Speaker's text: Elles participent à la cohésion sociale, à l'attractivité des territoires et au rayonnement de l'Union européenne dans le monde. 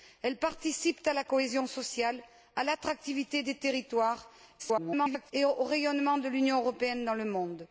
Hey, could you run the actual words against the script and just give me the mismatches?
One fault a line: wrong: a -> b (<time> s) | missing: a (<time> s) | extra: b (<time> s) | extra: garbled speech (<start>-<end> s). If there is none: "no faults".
extra: garbled speech (4.6-5.3 s)